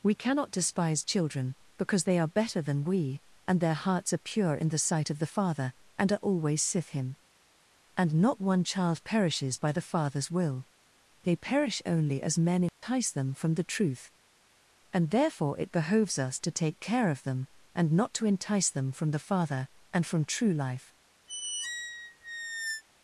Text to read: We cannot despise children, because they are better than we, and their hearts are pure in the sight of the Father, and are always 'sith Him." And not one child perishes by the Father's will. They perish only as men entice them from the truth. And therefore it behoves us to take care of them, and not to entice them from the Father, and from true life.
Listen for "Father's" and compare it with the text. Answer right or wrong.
right